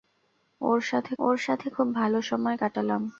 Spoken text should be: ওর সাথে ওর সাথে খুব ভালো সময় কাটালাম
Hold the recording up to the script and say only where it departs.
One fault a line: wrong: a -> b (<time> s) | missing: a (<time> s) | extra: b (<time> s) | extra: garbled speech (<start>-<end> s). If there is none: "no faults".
no faults